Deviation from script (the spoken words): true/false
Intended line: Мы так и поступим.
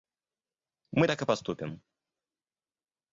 false